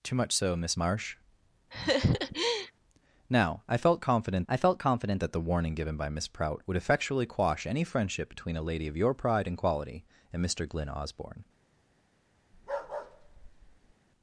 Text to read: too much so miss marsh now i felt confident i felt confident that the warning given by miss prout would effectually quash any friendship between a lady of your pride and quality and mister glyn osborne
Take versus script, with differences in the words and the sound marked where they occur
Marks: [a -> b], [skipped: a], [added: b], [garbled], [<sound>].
too much so miss marsh [laugh] now i felt confident i felt confident that the warning given by miss prout would effectually quash any friendship between a lady of your pride and quality and mister glyn osborne [bark]